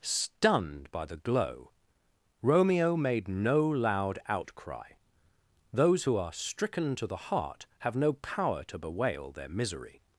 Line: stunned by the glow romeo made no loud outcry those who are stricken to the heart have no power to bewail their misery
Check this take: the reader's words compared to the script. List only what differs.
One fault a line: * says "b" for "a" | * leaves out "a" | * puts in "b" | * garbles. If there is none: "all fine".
all fine